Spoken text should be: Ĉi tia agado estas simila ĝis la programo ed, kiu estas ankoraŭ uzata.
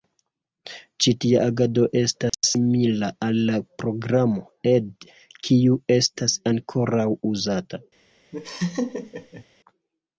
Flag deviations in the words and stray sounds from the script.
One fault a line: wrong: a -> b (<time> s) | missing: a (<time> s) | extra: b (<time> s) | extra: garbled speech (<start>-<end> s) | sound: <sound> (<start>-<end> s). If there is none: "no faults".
sound: dropout (2.3-2.3 s)
wrong: ĝis -> al (3.3 s)
sound: laugh (8.3-9.4 s)